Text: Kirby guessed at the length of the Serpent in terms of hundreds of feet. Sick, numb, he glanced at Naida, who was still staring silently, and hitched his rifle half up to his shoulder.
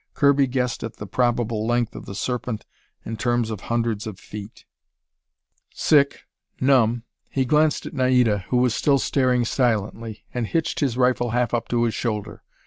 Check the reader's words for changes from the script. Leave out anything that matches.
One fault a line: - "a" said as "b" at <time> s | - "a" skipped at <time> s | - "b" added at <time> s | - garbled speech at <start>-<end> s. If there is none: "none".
- "probable" added at 1.1 s